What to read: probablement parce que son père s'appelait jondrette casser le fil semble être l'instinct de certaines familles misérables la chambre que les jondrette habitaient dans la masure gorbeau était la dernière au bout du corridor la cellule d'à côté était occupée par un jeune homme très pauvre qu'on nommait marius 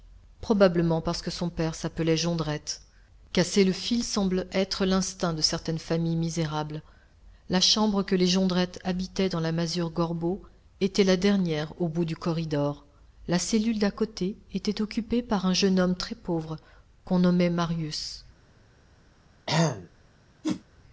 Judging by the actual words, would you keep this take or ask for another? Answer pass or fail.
pass